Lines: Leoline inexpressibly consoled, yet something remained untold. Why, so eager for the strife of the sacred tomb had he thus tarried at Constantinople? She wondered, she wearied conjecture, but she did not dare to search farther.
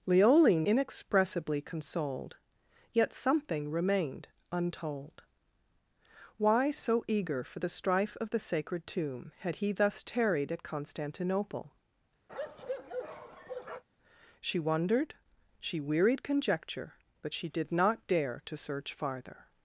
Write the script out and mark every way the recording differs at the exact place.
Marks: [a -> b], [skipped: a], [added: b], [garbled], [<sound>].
Leoline inexpressibly consoled, yet something remained untold. Why, so eager for the strife of the sacred tomb had he thus tarried at Constantinople? [bark] She wondered, she wearied conjecture, but she did not dare to search farther.